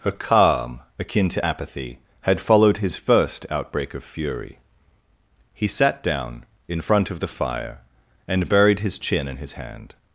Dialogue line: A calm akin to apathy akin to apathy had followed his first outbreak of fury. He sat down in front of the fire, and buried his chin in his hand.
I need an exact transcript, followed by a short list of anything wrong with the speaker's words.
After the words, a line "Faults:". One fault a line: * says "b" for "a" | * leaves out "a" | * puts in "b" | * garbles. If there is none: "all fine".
A calm akin to apathy had followed his first outbreak of fury. He sat down in front of the fire, and buried his chin in his hand.
Faults:
* leaves out "akin to apathy"